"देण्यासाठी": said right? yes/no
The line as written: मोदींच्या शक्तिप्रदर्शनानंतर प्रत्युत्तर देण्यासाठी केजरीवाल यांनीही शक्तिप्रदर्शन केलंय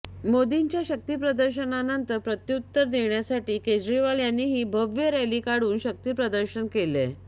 yes